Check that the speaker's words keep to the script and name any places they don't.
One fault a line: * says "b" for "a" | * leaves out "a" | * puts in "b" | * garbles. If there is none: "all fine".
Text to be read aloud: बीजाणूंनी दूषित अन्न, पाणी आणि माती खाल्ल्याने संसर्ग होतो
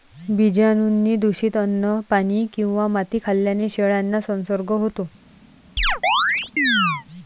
* says "किंवा" for "आणि"
* puts in "शेळ्यांना"